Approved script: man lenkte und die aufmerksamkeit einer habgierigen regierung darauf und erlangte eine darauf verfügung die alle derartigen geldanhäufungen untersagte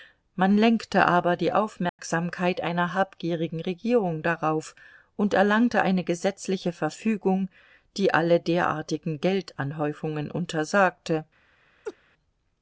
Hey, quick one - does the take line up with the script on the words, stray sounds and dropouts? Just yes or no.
no